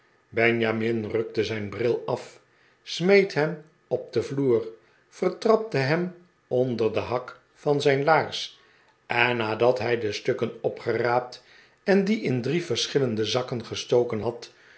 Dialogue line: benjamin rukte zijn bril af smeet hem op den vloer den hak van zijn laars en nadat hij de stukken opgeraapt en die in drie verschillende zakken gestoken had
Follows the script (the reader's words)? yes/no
no